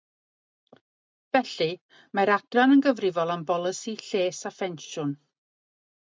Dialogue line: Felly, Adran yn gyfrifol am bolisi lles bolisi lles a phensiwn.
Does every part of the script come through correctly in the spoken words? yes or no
no